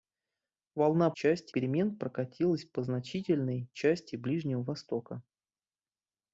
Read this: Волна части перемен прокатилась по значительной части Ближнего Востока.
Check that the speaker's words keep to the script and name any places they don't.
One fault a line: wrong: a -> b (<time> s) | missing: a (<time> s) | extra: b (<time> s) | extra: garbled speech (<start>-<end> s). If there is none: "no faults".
no faults